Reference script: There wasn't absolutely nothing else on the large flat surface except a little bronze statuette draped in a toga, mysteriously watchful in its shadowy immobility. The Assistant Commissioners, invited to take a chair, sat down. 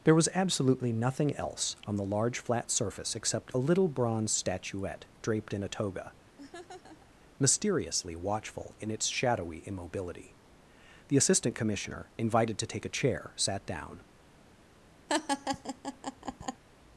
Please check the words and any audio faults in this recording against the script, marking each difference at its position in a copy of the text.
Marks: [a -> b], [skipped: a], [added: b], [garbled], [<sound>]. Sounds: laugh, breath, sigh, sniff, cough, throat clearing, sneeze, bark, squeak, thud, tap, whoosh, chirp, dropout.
There [wasn't -> was] absolutely nothing else on the large flat surface except a little bronze statuette draped in a toga, [laugh] mysteriously watchful in its shadowy immobility. The Assistant [Commissioners, -> Commissioner] invited to take a chair, sat down. [laugh]